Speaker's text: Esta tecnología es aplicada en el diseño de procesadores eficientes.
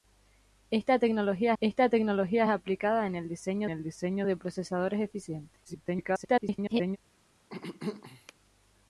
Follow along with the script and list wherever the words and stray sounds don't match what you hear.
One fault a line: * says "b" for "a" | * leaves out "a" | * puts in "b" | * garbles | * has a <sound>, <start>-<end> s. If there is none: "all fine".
* puts in "esta tecnología"
* puts in "el diseño"
* garbles
* has a throat clearing, 7.5-8.3 s